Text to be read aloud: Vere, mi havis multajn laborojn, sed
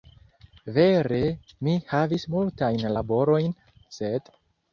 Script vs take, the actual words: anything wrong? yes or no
no